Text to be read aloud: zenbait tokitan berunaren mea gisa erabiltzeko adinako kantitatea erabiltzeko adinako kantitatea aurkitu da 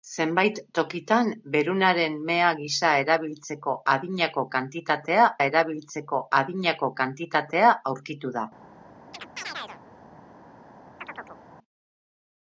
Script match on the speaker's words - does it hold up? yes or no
yes